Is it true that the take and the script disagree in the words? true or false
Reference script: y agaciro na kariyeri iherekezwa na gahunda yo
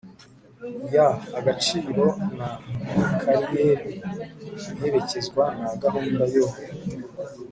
false